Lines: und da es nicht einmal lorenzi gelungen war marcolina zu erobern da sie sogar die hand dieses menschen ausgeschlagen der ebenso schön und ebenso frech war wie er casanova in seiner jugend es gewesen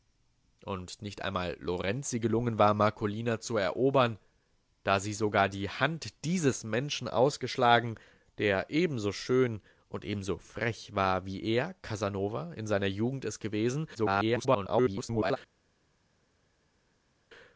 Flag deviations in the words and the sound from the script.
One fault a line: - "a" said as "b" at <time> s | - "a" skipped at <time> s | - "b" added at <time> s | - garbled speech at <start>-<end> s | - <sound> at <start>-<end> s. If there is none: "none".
- "da es" skipped at 1.0 s
- garbled speech at 13.9-15.4 s